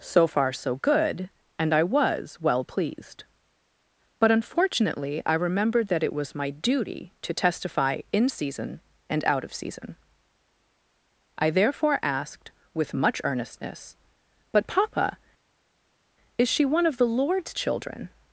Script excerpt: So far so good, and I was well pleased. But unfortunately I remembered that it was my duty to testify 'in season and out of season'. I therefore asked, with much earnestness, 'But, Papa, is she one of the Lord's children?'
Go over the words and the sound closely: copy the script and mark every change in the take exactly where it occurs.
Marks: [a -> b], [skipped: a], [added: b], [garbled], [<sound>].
So far so good, and I was well pleased. But unfortunately I remembered that it was my duty to testify 'in season and out of season'. I therefore asked, with much earnestness, 'But, Papa, is she one of the Lord's children?'